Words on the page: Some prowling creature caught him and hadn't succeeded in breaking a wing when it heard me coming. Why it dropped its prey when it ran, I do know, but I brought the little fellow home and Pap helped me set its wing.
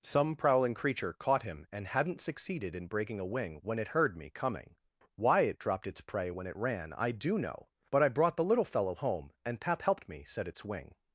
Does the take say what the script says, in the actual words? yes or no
yes